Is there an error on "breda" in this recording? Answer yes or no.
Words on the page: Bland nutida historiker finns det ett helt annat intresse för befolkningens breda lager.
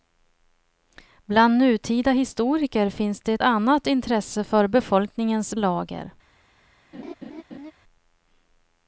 yes